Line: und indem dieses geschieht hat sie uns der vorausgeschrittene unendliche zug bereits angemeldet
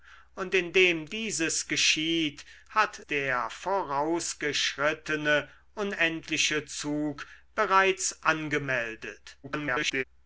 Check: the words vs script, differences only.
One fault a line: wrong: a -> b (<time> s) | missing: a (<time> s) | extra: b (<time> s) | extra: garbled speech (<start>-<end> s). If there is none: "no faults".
missing: sie uns (3.0 s)
extra: garbled speech (9.4-10.0 s)